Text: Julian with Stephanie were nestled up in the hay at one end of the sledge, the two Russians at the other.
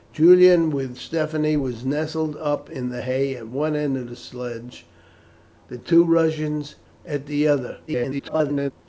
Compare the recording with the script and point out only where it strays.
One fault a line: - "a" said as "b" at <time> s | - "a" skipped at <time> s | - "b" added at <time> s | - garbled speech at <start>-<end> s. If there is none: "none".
- garbled speech at 7.9-8.7 s